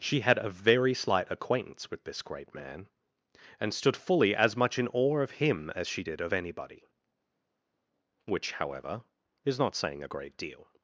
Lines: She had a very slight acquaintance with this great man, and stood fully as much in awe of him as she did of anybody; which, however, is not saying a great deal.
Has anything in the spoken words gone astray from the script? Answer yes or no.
no